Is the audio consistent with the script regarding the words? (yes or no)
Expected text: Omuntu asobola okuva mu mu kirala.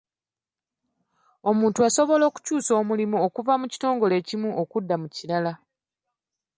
no